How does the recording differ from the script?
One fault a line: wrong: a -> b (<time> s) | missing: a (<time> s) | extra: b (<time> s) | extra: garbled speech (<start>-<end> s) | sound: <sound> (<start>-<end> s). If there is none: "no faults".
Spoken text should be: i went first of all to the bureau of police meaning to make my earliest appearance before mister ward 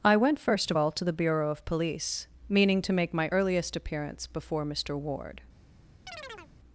sound: chirp (6.1-6.5 s)